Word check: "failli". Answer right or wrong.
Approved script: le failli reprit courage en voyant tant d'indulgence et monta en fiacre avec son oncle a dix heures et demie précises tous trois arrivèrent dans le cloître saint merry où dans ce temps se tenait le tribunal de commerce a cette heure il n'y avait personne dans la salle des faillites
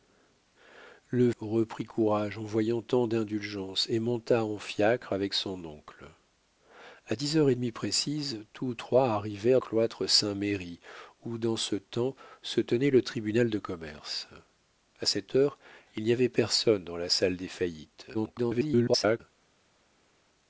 wrong